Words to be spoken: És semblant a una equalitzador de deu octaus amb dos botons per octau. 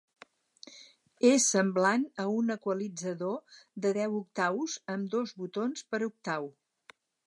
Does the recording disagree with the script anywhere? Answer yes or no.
yes